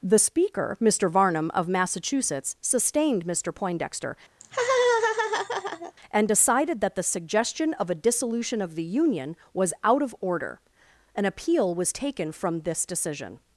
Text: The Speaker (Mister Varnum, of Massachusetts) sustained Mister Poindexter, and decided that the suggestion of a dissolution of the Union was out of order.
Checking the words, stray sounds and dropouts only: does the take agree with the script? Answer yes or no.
no